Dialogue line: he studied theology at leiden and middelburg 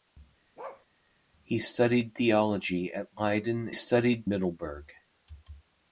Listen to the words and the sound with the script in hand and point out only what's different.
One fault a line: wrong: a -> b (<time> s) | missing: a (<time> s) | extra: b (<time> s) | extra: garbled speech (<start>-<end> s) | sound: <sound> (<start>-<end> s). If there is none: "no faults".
sound: bark (0.6-0.9 s)
wrong: and -> studied (3.7 s)